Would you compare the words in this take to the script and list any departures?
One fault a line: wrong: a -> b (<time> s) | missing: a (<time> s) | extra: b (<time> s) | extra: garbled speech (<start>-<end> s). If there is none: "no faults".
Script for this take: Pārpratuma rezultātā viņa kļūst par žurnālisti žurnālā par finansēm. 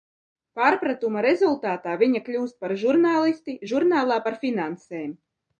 no faults